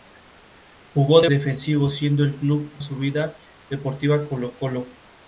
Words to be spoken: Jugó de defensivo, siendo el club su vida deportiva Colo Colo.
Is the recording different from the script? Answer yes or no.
no